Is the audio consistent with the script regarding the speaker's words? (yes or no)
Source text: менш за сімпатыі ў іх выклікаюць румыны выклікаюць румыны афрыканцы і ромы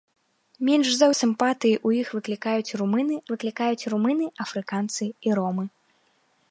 yes